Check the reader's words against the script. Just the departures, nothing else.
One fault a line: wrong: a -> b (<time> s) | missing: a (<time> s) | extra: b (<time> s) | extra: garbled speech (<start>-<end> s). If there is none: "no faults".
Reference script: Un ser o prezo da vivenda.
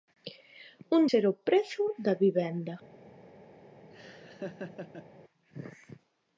no faults